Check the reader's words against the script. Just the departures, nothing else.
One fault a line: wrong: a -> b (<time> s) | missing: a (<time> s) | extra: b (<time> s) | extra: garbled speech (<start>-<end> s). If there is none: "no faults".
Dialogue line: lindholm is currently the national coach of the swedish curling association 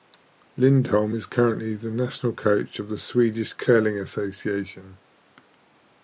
no faults